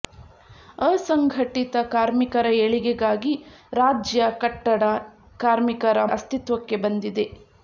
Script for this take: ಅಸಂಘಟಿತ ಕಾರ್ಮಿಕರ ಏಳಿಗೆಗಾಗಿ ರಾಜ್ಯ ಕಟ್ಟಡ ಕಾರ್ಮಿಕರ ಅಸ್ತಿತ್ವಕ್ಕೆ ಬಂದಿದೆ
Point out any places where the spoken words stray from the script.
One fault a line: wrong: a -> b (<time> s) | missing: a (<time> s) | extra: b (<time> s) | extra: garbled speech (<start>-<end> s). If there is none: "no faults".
no faults